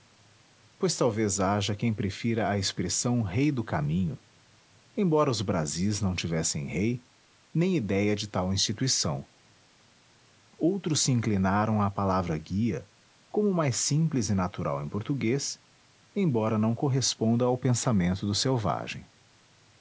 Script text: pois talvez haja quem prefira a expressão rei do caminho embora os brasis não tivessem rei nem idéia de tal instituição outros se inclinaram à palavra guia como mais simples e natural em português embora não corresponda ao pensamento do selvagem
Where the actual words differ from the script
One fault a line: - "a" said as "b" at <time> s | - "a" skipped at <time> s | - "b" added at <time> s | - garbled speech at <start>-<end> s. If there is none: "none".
none